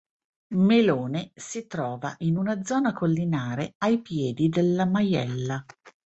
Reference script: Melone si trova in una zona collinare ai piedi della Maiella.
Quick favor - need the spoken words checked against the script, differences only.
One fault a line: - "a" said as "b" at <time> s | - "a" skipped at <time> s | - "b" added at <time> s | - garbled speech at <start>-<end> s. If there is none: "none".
none